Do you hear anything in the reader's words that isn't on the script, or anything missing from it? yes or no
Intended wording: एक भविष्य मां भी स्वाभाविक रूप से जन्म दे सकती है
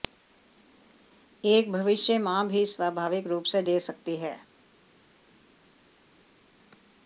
yes